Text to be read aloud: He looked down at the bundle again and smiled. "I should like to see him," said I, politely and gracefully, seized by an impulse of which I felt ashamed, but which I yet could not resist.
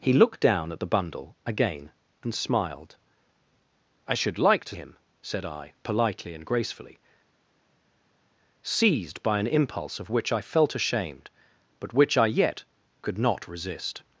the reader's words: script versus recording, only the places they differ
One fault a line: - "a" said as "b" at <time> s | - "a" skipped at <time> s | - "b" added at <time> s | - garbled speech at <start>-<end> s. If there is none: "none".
- "see" skipped at 4.8 s